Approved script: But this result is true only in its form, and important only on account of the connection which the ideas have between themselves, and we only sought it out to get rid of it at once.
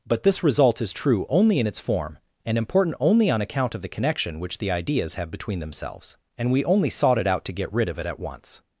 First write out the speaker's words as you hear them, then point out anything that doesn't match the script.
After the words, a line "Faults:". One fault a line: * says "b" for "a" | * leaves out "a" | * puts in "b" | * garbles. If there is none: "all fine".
But this result is true only in its form, and important only on account of the connection which the ideas have between themselves, and we only sought it out to get rid of it at once.
Faults:
all fine